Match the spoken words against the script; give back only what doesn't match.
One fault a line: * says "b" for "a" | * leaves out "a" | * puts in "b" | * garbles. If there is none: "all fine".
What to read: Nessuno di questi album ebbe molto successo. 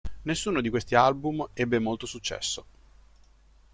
all fine